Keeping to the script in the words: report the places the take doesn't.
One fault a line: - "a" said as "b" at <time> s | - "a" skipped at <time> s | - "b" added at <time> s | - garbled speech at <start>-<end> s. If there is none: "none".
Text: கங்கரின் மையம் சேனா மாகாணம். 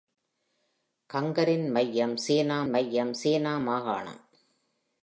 - "மையம் சேனா" added at 2.7 s